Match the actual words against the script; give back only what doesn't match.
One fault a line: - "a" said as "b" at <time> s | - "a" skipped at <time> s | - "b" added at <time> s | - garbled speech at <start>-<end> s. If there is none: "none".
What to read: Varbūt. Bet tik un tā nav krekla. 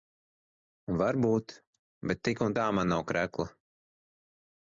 - "man" added at 2.8 s